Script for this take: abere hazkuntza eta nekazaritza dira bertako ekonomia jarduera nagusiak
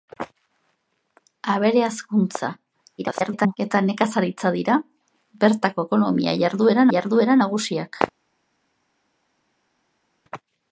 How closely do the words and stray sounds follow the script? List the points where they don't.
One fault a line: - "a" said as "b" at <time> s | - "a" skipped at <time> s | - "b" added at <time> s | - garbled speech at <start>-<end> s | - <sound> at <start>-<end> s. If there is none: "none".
- garbled speech at 3.0-3.6 s
- "jarduera" added at 6.9 s